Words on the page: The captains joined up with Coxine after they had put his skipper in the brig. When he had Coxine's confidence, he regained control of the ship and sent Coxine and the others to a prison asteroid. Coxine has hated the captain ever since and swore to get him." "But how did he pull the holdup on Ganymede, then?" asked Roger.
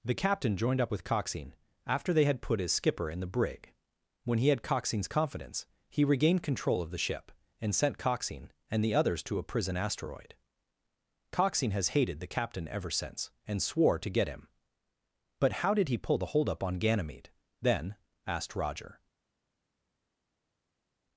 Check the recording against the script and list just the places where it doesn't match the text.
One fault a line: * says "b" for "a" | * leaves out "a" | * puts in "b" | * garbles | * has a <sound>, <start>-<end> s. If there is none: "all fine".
* says "captain" for "captains"